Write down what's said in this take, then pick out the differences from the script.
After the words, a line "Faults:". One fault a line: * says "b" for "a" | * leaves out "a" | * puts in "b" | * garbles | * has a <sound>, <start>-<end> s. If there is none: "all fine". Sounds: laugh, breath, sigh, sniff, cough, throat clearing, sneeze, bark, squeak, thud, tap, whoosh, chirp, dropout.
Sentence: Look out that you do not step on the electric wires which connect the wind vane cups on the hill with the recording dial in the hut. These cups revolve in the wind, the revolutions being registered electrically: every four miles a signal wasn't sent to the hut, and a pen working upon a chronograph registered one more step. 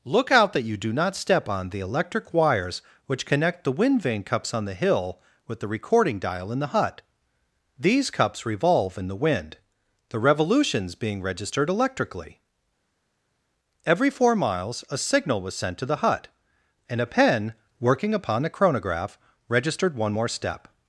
Look out that you do not step on the electric wires which connect the wind vane cups on the hill with the recording dial in the hut. These cups revolve in the wind, the revolutions being registered electrically: every four miles a signal was sent to the hut, and a pen working upon a chronograph registered one more step.
Faults:
* says "was" for "wasn't"